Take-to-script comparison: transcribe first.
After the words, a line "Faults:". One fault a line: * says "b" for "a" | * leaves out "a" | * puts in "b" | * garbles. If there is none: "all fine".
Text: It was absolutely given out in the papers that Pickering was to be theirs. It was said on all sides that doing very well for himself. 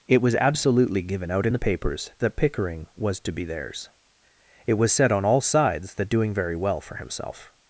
It was absolutely given out in the papers that Pickering was to be theirs. It was said on all sides that doing very well for himself.
Faults:
all fine